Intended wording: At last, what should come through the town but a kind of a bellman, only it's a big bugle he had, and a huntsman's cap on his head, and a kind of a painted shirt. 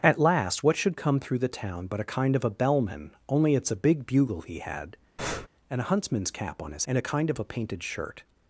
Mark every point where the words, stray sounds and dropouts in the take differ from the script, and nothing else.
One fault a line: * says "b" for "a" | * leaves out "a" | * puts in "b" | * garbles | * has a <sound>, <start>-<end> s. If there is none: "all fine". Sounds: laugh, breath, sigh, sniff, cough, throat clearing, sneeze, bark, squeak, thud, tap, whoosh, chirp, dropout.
* has a breath, 5.2-5.5 s
* leaves out "head"